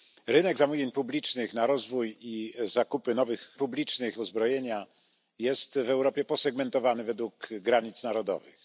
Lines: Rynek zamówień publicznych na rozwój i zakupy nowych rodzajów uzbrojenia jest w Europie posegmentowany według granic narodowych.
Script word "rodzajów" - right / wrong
wrong